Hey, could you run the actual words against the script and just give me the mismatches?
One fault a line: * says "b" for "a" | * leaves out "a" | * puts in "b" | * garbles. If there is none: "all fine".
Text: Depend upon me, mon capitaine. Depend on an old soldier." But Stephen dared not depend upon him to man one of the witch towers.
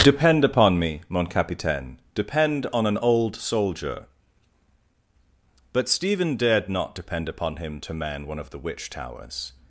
all fine